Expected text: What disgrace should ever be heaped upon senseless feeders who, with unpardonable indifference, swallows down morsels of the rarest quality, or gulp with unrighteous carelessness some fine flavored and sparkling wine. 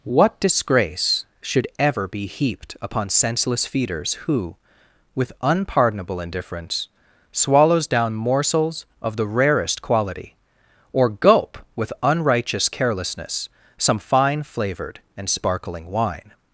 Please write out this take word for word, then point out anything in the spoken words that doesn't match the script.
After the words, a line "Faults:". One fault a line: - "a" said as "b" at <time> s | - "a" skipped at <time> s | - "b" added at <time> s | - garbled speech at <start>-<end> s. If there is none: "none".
What disgrace should ever be heaped upon senseless feeders who, with unpardonable indifference, swallows down morsels of the rarest quality, or gulp with unrighteous carelessness some fine flavored and sparkling wine.
Faults:
none